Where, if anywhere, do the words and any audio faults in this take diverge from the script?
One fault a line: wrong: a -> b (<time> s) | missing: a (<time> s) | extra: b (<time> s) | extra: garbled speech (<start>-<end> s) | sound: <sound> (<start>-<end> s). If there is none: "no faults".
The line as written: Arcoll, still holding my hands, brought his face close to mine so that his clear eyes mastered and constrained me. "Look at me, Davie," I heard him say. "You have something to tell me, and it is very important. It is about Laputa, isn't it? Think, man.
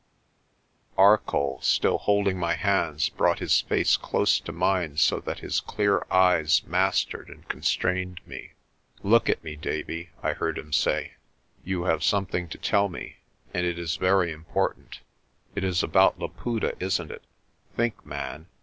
no faults